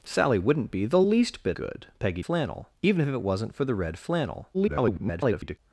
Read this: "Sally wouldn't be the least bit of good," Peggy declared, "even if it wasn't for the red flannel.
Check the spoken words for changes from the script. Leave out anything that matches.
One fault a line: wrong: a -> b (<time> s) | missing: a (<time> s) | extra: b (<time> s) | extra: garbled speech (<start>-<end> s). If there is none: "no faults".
missing: of (1.6 s)
wrong: declared -> flannel (2.2 s)
extra: garbled speech (4.5-5.6 s)